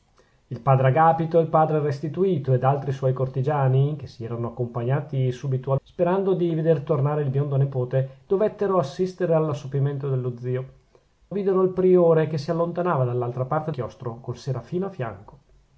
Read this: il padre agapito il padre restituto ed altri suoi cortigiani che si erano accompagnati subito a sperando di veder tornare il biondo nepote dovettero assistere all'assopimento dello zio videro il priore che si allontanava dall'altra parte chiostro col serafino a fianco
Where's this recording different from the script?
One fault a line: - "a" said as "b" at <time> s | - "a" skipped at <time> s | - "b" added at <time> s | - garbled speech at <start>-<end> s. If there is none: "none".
none